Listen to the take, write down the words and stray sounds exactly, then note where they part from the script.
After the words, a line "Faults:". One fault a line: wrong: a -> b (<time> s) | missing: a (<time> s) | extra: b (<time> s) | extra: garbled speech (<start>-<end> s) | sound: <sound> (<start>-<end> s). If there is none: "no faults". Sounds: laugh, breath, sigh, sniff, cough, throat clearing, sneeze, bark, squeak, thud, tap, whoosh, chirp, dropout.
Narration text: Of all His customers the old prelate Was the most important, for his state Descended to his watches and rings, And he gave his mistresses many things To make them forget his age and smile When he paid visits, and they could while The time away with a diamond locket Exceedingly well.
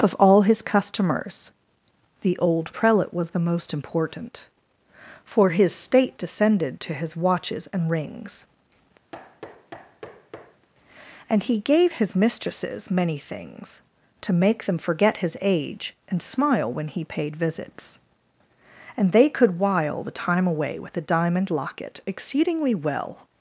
Of all His customers the old prelate Was the most important, for his state Descended to his watches and rings, And he gave his mistresses many things To make them forget his age and smile When he paid visits, and they could while The time away with a diamond locket Exceedingly well.
Faults:
sound: thud (9.1-10.7 s)